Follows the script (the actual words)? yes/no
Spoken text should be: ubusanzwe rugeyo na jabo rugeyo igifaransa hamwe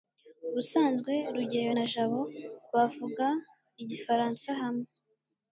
no